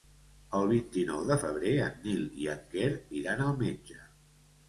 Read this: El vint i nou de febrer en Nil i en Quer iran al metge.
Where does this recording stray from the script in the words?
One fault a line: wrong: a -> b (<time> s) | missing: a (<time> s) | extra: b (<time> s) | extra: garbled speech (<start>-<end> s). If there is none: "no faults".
no faults